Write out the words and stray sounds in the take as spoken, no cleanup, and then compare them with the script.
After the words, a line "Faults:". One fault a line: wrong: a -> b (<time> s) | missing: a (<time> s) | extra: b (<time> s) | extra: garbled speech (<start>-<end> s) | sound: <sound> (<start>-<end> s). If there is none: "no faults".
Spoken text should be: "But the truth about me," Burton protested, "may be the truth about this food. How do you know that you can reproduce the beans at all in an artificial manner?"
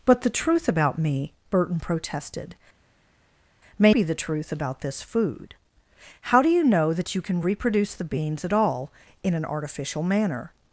"But the truth about me," Burton protested, "may be the truth about this food. How do you know that you can reproduce the beans at all in an artificial manner?"
Faults:
no faults